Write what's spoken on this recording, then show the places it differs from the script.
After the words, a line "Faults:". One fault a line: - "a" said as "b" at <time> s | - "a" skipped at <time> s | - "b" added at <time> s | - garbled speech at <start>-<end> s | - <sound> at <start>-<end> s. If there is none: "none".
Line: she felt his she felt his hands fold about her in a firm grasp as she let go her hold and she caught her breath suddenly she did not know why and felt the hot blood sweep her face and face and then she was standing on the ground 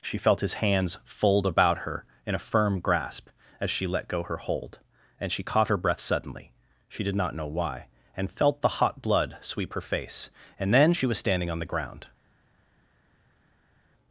she felt his hands fold about her in a firm grasp as she let go her hold and she caught her breath suddenly she did not know why and felt the hot blood sweep her face and then she was standing on the ground
Faults:
- "she felt his" skipped at 0.6 s
- "face and" skipped at 10.7 s